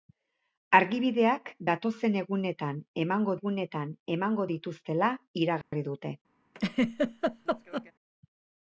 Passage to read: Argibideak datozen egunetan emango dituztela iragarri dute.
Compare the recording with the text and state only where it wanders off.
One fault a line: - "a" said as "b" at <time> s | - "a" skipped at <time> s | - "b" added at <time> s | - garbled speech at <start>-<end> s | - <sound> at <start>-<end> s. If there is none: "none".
- "egunetan emango" added at 3.4 s
- dropout at 5.6-5.7 s
- laugh at 6.5-7.9 s